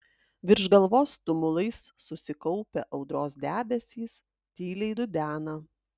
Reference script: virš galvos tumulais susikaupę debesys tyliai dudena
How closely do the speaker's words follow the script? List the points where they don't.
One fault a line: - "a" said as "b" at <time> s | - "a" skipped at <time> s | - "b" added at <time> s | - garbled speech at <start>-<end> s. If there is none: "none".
- "audros" added at 3.0 s